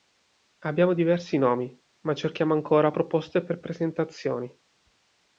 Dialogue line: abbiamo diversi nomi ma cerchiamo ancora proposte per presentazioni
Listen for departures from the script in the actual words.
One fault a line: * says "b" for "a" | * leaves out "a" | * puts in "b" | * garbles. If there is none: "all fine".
all fine